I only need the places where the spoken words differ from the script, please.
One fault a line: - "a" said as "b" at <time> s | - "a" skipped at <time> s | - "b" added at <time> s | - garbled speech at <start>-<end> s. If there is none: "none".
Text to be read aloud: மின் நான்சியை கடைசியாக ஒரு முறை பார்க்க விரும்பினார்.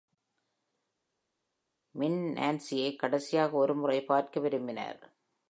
none